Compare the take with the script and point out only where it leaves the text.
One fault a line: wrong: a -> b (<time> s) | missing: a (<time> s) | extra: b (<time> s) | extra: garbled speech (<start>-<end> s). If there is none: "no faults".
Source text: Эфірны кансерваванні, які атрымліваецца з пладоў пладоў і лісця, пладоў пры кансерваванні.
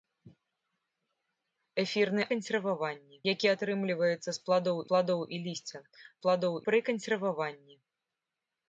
no faults